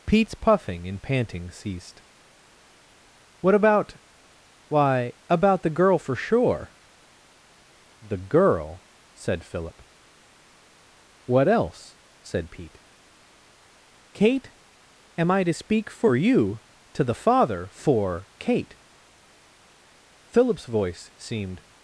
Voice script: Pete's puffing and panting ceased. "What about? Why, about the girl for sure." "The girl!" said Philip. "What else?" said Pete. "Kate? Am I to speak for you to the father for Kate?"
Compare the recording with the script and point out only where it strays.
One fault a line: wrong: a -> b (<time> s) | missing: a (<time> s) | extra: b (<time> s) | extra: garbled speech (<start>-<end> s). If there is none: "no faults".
extra: Philip's voice seemed (20.2 s)